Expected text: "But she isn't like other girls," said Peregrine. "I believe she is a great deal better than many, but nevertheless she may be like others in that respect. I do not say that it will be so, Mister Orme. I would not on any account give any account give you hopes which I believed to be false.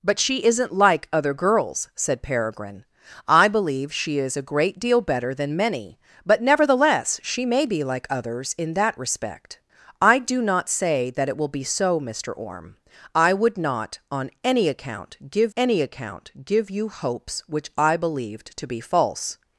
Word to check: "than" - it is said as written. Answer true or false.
true